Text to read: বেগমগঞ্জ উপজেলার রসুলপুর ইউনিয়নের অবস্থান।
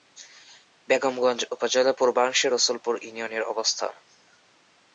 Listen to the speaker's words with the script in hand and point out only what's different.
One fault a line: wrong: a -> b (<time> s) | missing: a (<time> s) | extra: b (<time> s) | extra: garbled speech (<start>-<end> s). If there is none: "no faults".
extra: পূর্বাংশে (2.0 s)